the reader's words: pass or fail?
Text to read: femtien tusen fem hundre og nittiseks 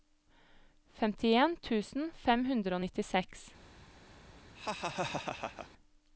pass